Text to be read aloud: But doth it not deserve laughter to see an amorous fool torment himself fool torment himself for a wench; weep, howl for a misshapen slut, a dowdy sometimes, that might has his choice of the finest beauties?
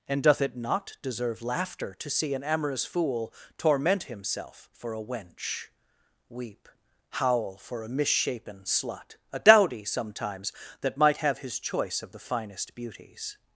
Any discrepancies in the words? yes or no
yes